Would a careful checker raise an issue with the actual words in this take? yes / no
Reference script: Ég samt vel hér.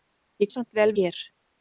no